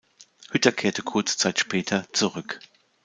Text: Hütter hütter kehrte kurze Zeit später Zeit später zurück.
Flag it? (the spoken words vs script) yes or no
yes